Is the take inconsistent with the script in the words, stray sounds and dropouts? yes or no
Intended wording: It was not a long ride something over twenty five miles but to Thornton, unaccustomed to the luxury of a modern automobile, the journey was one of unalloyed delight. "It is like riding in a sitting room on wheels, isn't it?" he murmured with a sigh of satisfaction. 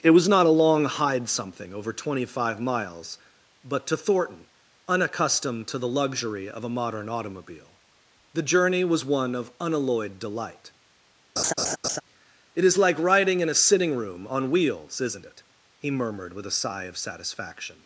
yes